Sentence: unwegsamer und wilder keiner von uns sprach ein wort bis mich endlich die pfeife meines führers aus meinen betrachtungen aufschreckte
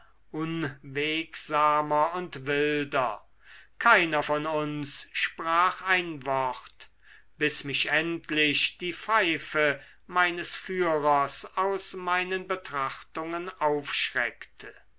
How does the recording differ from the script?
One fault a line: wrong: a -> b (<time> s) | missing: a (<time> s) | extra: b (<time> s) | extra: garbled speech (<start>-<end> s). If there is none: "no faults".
no faults